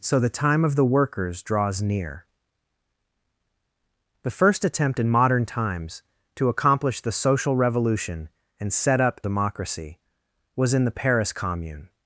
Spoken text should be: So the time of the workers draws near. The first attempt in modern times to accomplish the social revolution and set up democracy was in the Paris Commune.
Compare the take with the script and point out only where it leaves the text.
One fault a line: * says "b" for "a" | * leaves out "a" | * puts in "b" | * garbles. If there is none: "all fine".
all fine